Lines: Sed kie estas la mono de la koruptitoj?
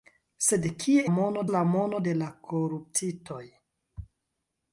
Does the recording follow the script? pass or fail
fail